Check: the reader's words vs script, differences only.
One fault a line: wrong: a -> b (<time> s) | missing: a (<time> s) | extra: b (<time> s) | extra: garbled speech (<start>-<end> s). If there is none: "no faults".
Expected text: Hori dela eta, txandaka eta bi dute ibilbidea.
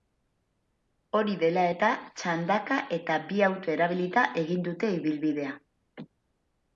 extra: auto erabilita egin (3.5 s)